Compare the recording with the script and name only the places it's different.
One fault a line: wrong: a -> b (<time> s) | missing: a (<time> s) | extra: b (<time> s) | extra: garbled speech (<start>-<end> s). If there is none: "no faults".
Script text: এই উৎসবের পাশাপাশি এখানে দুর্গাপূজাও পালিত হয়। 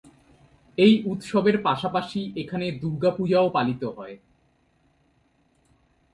no faults